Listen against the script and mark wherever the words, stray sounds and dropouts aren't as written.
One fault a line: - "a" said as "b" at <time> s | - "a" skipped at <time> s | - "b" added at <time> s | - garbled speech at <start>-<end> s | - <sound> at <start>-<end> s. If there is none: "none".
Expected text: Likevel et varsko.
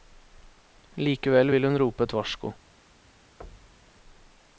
- "vil hun rope" added at 1.5 s
- thud at 3.4-4.0 s